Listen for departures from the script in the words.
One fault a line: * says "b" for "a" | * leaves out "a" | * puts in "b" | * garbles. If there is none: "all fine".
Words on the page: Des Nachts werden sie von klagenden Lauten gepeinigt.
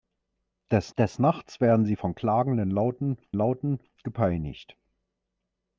* puts in "des"
* puts in "Lauten"